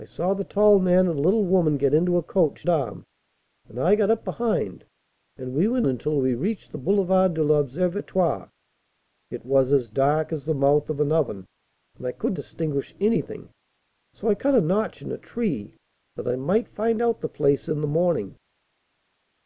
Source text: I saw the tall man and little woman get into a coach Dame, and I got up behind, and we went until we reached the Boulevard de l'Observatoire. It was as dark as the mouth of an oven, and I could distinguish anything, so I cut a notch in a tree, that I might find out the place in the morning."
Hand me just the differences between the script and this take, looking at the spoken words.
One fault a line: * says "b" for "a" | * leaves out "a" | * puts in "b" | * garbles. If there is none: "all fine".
all fine